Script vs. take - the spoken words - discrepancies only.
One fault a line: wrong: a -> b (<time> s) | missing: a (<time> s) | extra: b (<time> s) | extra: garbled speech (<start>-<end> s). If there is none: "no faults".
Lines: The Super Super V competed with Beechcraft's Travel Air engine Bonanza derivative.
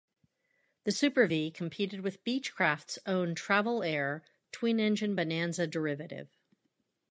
missing: Super (1.3 s)
extra: own (3.0 s)
extra: twin (4.5 s)